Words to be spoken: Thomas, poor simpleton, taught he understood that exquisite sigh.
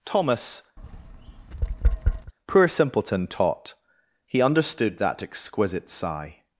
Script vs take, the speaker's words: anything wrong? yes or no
no